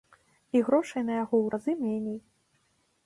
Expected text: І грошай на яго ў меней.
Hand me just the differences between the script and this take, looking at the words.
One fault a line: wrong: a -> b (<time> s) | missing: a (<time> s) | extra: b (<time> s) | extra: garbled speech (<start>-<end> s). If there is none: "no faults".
extra: разы (1.6 s)